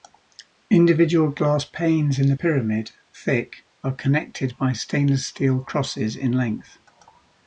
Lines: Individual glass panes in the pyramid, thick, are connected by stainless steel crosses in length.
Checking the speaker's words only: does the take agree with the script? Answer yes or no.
yes